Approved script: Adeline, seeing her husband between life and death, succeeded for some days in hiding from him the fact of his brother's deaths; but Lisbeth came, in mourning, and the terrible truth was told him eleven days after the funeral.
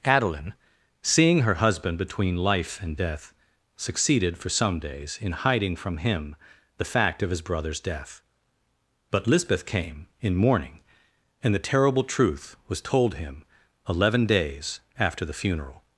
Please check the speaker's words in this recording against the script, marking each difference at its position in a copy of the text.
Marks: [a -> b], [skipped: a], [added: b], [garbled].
Adeline, seeing her husband between life and death, succeeded for some days in hiding from him the fact of his brother's [deaths; -> death] but Lisbeth came, in mourning, and the terrible truth was told him eleven days after the funeral.